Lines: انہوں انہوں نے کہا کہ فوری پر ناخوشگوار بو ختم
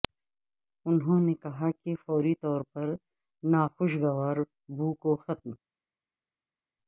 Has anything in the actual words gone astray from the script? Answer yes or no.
yes